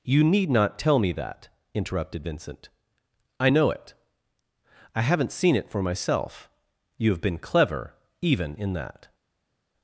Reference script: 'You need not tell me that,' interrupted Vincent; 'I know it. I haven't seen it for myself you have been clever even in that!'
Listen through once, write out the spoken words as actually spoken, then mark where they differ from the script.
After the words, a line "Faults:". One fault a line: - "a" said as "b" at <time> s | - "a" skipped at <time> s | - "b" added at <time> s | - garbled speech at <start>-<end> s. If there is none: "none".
'You need not tell me that,' interrupted Vincent; 'I know it. I haven't seen it for myself you have been clever even in that!'
Faults:
none